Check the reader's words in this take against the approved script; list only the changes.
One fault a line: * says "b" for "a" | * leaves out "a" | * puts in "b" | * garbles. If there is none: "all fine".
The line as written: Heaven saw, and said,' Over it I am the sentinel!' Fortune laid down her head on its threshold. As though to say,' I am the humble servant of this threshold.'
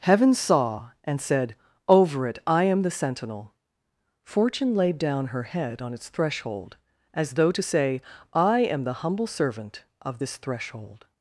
all fine